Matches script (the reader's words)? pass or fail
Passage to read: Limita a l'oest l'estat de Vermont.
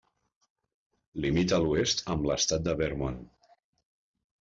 fail